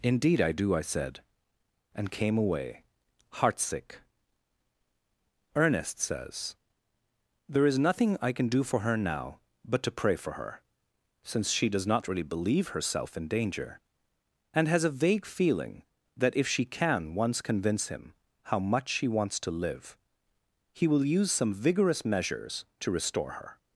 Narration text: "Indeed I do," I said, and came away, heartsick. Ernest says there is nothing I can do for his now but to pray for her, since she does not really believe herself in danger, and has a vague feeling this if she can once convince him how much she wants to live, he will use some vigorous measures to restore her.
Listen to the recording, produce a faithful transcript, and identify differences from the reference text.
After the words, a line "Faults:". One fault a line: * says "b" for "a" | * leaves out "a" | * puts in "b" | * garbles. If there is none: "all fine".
"Indeed I do," I said, and came away, heartsick. Ernest says there is nothing I can do for her now but to pray for her, since she does not really believe herself in danger, and has a vague feeling that if she can once convince him how much she wants to live, he will use some vigorous measures to restore her.
Faults:
* says "her" for "his"
* says "that" for "this"